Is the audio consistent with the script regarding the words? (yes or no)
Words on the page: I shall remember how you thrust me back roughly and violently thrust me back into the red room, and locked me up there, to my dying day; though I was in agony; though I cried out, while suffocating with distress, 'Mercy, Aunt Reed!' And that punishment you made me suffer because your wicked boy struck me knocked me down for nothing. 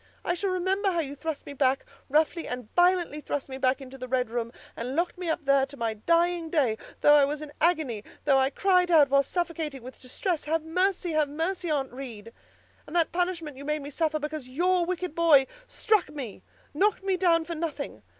no